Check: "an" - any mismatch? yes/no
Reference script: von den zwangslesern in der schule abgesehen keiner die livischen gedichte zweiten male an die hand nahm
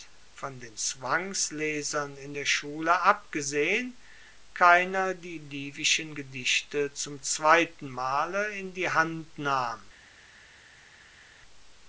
yes